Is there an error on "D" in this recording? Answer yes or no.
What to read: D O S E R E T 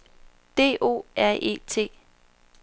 no